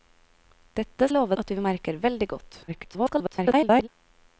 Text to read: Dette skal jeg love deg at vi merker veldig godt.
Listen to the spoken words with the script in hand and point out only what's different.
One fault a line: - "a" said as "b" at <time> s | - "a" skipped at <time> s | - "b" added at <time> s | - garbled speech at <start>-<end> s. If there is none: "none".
- "skal" skipped at 1.1 s
- "deg" skipped at 1.4 s
- garbled speech at 2.7-3.9 s